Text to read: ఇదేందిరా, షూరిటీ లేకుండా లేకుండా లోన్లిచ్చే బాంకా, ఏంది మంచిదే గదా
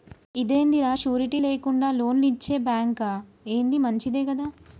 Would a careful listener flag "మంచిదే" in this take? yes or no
no